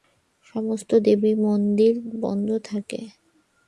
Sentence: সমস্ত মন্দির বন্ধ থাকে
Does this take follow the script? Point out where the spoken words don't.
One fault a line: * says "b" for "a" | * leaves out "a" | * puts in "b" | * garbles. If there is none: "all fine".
* puts in "দেবী"